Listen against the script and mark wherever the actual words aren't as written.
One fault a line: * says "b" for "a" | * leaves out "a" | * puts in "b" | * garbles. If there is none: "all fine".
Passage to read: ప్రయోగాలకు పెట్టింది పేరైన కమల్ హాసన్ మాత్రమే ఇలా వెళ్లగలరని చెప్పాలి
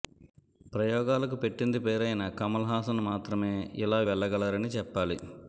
all fine